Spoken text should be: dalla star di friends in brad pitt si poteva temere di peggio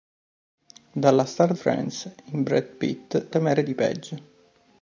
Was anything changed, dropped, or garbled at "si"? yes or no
yes